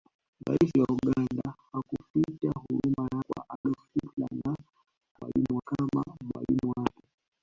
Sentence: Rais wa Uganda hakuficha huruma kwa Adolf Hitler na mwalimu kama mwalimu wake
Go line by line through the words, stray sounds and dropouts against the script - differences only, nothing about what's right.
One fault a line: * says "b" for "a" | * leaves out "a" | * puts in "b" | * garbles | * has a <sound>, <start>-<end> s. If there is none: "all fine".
* has a dropout, 3.6-3.6 s